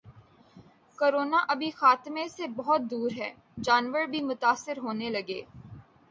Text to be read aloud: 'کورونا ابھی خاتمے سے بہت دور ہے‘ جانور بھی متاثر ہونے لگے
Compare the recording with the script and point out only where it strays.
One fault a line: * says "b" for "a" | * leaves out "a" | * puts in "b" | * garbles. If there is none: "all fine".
all fine